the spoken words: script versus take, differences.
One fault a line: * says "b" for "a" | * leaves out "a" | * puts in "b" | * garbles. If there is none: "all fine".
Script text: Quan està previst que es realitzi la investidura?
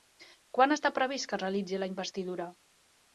all fine